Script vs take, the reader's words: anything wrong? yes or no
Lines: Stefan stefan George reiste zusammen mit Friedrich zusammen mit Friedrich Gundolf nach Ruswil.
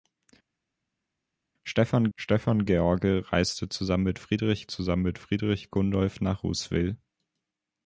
no